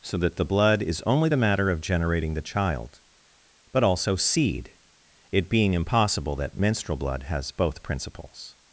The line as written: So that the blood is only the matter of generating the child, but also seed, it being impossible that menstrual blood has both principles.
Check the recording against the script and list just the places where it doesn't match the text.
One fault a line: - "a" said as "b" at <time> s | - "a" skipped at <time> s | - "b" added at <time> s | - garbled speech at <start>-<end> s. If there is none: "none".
none